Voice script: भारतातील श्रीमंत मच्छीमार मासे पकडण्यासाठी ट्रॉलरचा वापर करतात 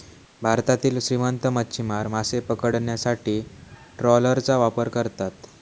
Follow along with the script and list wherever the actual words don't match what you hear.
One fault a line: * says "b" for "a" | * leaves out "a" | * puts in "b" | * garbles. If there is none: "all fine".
all fine